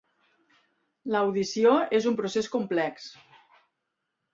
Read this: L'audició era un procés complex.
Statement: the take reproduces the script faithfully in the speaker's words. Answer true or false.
false